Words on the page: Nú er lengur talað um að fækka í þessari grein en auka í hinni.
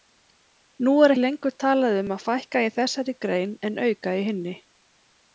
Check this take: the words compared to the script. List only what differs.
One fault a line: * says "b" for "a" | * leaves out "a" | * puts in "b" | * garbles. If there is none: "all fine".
all fine